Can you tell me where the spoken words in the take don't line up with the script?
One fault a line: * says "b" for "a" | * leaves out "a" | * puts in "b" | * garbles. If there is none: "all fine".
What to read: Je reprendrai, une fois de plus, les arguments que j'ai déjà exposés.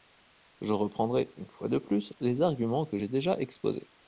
all fine